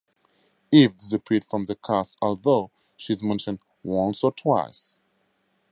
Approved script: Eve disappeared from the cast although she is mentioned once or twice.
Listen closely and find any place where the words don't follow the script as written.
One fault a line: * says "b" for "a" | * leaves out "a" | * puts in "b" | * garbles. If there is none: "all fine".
all fine